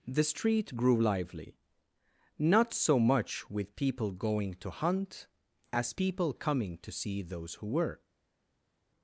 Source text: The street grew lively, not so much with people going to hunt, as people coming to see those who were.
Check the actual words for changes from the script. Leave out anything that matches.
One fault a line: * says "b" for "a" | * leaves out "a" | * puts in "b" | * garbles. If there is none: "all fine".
all fine